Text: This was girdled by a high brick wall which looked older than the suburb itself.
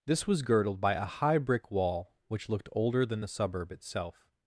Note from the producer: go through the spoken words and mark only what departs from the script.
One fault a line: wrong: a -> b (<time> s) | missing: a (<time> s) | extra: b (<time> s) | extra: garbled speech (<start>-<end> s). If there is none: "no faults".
no faults